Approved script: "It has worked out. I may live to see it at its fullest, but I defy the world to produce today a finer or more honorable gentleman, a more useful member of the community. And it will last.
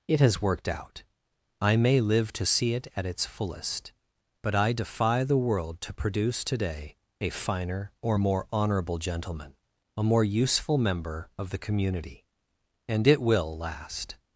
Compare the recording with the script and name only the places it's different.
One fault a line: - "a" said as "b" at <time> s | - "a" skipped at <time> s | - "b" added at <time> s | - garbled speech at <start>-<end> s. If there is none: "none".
none